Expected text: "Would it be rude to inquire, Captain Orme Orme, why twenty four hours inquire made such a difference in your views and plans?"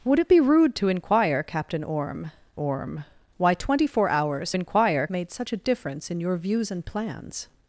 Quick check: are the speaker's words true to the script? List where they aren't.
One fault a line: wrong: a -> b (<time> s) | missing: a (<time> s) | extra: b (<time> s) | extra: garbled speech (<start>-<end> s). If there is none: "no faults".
no faults